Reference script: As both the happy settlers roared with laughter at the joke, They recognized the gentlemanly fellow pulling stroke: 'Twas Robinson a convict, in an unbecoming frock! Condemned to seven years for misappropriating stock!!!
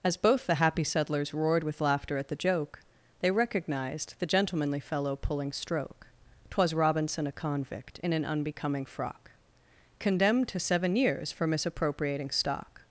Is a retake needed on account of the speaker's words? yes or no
no